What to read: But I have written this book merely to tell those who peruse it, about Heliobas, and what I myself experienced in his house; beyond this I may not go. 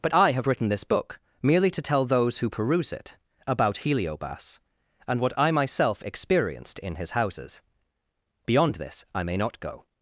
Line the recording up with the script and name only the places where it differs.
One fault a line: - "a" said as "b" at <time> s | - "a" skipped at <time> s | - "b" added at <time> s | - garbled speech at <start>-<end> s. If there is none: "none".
- "house" said as "houses" at 7.1 s